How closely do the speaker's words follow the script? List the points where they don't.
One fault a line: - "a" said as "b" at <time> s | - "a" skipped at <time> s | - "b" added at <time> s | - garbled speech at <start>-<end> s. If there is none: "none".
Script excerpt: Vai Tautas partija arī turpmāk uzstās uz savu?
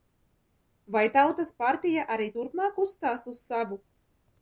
none